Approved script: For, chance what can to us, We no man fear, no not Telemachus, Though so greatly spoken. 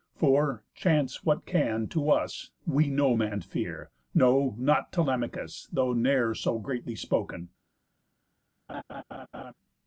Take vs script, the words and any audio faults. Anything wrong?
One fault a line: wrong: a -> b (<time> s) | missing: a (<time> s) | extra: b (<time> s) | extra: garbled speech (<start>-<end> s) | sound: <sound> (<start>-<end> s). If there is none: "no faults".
extra: ne'er (5.9 s)
sound: laugh (8.7-9.5 s)